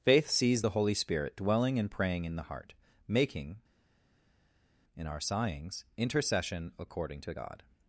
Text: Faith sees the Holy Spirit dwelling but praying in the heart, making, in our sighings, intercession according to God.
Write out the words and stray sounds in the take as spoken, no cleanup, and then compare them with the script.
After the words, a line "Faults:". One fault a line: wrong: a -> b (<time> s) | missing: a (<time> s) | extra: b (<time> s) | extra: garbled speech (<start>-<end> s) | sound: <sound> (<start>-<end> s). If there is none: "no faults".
Faith sees the Holy Spirit dwelling and praying in the heart, making, in our sighings, intercession according to God.
Faults:
wrong: but -> and (1.8 s)